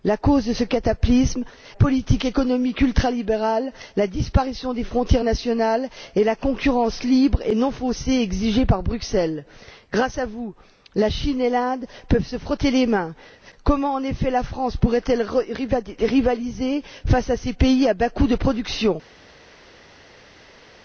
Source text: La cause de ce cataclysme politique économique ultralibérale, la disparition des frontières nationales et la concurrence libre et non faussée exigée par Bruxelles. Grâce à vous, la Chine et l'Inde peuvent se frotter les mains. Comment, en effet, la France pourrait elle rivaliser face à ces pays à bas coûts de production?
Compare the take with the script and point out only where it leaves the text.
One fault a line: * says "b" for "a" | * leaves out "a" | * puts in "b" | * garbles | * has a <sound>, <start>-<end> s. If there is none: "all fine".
all fine